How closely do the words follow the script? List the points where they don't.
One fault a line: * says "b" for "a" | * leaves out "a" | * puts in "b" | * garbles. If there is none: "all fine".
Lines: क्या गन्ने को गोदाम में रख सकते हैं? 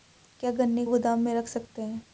* leaves out "को"